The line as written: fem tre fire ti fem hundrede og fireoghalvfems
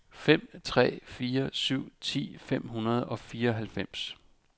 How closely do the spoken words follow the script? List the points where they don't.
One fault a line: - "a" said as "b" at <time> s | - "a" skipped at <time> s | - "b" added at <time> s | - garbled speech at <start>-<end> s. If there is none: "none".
- "syv" added at 1.5 s